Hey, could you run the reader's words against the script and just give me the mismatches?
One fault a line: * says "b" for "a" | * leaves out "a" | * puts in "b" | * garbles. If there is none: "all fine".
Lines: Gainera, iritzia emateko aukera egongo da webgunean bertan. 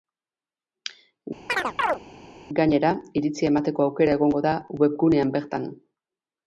all fine